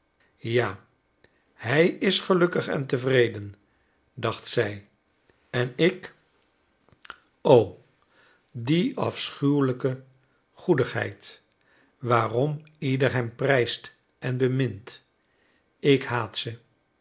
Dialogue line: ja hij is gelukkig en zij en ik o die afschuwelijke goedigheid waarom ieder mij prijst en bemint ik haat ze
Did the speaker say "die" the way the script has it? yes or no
yes